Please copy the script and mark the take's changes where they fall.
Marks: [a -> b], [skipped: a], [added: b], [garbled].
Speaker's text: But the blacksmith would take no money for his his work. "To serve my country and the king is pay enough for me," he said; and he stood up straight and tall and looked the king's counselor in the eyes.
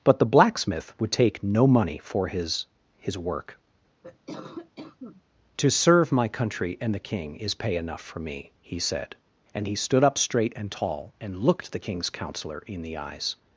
But the blacksmith would take no money for his his work. "To serve my country and the king is pay enough for me," he said; and he stood up straight and tall and looked the king's counselor in the eyes.